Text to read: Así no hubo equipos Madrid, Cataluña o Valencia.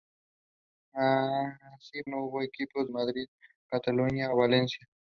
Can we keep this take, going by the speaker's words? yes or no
yes